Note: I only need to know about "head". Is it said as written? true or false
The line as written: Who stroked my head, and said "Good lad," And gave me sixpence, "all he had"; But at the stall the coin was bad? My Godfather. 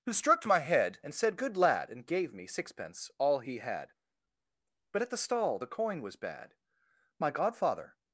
true